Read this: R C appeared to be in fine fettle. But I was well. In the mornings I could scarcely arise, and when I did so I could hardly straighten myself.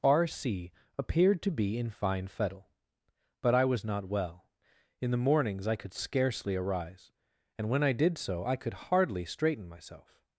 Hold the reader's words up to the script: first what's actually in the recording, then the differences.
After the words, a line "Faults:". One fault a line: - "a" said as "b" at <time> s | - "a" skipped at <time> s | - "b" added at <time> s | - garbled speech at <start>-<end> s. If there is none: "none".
R C appeared to be in fine fettle. But I was not well. In the mornings I could scarcely arise, and when I did so I could hardly straighten myself.
Faults:
- "not" added at 3.9 s